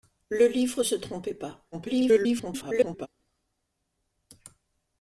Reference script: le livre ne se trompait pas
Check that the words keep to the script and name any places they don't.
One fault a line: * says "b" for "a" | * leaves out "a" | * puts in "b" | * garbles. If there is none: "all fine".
* leaves out "ne"
* garbles